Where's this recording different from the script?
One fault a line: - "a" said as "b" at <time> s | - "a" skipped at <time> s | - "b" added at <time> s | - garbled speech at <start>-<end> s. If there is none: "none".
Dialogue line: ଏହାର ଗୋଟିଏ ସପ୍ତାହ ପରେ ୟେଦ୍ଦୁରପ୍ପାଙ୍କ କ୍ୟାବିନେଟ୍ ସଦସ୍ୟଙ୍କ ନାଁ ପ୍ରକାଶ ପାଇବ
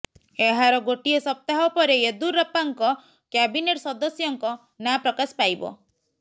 none